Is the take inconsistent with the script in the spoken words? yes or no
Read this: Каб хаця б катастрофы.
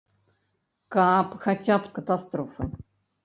no